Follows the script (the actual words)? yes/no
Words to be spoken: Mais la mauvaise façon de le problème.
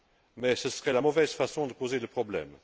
no